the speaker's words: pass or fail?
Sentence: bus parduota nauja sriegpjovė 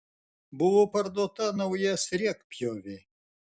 fail